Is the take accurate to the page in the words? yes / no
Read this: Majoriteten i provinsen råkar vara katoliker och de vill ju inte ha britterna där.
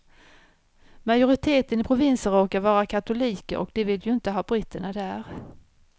yes